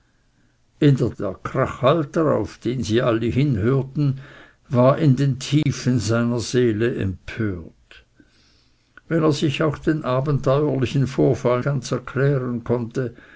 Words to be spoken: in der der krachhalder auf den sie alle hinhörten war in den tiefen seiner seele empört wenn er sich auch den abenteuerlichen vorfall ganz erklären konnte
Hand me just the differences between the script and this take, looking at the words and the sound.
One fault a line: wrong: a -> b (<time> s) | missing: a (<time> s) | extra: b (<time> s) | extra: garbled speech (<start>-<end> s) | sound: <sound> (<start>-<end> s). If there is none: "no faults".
sound: dropout (5.6-5.7 s)